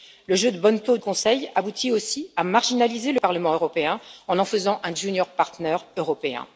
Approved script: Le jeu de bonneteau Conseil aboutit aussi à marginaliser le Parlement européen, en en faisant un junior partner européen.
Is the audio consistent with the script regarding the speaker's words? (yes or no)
yes